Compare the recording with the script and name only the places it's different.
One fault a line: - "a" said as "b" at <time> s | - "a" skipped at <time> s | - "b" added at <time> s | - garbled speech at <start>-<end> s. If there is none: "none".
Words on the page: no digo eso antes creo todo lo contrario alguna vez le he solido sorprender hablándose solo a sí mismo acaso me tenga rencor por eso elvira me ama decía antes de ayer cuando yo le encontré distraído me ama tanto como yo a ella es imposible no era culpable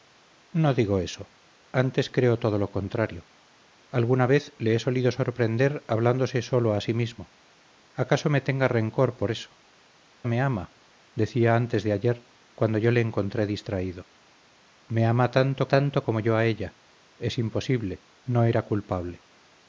- "elvira" skipped at 9.6 s
- "tanto" added at 15.7 s